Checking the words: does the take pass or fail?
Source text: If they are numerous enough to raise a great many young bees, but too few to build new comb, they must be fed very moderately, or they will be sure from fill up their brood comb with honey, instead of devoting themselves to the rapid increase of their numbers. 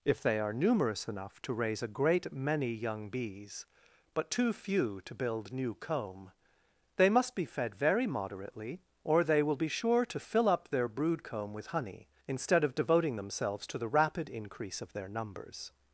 fail